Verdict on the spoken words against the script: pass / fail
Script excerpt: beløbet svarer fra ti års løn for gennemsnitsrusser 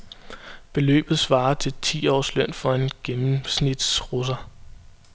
fail